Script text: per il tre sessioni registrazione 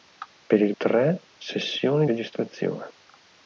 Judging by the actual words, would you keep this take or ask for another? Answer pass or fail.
pass